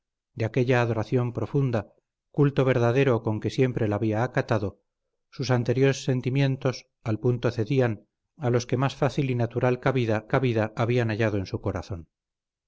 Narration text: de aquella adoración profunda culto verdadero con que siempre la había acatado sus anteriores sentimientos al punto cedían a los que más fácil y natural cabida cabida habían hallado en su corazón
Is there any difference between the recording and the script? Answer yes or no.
no